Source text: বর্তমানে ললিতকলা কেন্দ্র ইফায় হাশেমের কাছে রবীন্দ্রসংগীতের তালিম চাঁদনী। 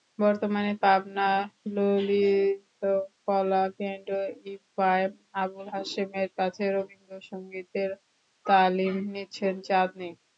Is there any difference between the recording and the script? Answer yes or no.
yes